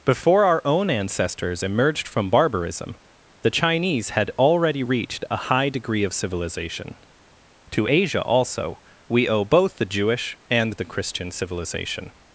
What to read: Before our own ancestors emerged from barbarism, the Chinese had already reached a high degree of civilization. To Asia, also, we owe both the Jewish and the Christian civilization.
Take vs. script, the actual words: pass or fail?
pass